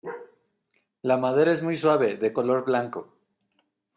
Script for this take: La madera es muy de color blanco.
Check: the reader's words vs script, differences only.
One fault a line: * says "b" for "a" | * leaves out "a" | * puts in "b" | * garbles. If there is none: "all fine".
* puts in "suave"